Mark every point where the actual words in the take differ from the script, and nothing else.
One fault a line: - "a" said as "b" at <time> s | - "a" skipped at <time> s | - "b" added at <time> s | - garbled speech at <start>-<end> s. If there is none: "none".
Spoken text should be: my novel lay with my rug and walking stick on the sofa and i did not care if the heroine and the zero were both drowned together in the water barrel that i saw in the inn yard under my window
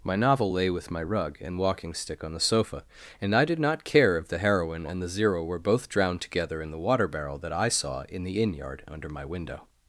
none